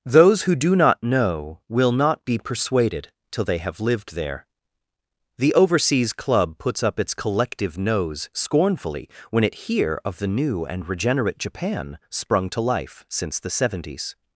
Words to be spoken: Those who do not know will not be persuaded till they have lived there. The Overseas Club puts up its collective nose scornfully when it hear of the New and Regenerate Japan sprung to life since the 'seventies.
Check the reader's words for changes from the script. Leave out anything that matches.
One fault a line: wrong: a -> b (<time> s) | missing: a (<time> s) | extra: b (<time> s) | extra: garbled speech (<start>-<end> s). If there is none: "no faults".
no faults